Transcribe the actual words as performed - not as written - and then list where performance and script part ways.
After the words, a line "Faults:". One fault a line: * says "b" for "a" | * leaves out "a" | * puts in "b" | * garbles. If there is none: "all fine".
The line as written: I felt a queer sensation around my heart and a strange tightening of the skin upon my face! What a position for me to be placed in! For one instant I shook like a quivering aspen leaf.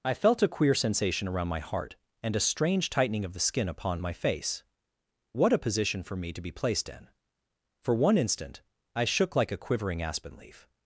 I felt a queer sensation around my heart and a strange tightening of the skin upon my face! What a position for me to be placed in! For one instant I shook like a quivering aspen leaf.
Faults:
all fine